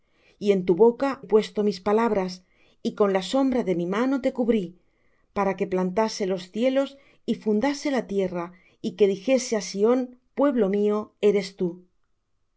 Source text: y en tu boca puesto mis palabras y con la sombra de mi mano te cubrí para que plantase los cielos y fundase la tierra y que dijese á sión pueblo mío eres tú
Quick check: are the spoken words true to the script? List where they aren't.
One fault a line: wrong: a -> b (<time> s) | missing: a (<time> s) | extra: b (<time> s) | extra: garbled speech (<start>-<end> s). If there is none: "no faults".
no faults